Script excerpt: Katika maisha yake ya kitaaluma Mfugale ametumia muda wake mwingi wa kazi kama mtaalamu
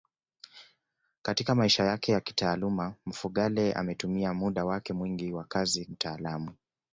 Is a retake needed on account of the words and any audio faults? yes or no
yes